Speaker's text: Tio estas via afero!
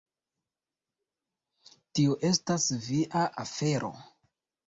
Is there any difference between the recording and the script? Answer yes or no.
no